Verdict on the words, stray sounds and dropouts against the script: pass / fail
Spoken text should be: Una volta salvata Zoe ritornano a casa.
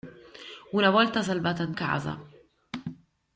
fail